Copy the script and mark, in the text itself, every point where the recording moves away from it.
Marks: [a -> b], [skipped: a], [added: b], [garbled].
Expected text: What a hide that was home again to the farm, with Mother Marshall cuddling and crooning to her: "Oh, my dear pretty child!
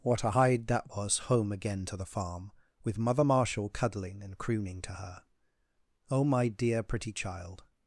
What a hide that was home again to the farm, with Mother Marshall cuddling and crooning to her: "Oh, my dear pretty child!